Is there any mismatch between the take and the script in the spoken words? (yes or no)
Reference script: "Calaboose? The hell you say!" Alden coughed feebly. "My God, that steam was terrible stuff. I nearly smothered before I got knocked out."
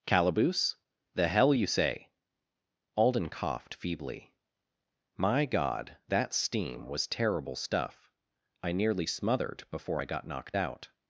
no